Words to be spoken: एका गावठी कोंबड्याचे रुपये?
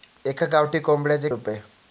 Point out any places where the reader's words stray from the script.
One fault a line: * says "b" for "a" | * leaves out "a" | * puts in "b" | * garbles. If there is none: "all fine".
all fine